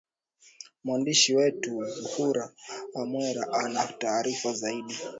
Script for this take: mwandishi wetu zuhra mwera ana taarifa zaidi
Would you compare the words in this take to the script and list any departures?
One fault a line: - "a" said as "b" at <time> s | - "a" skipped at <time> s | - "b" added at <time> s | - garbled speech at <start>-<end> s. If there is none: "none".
none